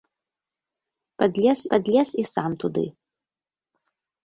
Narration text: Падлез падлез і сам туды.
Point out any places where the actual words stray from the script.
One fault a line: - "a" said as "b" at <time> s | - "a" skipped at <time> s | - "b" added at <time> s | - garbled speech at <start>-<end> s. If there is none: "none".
none